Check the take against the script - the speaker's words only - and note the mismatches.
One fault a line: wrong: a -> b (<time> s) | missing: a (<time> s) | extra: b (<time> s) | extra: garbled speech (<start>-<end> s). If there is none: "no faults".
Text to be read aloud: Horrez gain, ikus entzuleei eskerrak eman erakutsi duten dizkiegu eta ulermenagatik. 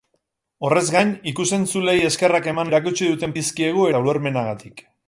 no faults